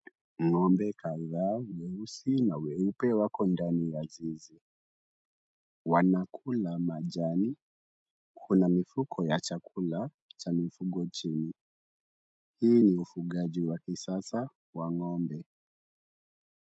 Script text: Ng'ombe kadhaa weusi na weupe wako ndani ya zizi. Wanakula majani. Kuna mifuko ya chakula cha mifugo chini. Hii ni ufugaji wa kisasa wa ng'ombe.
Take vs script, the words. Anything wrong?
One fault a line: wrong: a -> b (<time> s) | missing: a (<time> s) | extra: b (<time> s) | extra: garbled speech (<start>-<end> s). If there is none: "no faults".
no faults